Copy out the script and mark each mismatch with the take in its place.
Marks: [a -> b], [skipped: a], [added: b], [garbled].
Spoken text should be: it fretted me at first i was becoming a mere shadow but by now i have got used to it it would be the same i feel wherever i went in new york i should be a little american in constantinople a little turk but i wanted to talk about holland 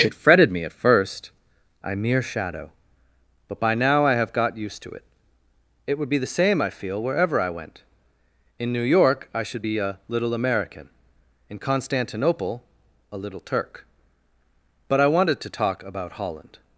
it fretted me at first i [skipped: was becoming a] mere shadow but by now i have got used to it it would be the same i feel wherever i went in new york i should be a little american in constantinople a little turk but i wanted to talk about holland